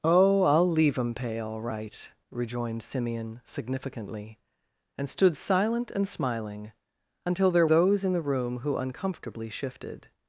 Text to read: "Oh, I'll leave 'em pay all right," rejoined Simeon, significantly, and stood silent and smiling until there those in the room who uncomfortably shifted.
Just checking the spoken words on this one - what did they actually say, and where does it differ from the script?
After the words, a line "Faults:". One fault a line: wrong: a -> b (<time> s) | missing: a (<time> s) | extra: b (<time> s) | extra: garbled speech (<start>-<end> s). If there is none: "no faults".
"Oh, I'll leave 'em pay all right," rejoined Simeon, significantly, and stood silent and smiling until there those in the room who uncomfortably shifted.
Faults:
no faults